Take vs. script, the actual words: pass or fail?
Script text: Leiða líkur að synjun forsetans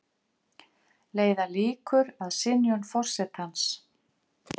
pass